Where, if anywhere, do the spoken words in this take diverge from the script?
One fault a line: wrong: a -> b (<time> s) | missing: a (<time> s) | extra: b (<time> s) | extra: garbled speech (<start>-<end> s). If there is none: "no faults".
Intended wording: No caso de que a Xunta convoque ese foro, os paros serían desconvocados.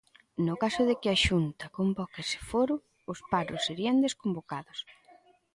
no faults